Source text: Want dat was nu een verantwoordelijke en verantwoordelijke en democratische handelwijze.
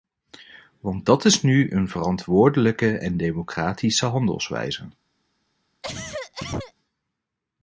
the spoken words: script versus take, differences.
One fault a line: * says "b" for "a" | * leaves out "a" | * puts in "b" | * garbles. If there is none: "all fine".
* says "is" for "was"
* leaves out "verantwoordelijke en"